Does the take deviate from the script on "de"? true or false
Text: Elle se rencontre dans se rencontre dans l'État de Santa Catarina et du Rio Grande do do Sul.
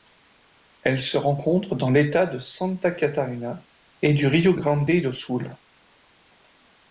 false